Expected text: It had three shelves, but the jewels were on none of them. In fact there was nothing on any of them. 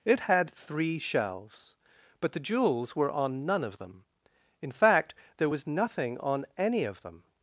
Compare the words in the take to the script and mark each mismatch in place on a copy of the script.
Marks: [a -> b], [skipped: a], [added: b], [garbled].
It had three shelves, but the jewels were on none of them. In fact there was nothing on any of them.